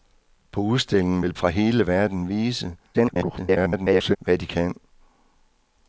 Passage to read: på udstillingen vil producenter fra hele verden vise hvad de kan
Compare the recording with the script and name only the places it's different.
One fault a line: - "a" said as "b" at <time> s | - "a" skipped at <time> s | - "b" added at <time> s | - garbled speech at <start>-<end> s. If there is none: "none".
- "producenter" skipped at 1.3 s
- garbled speech at 2.9-4.2 s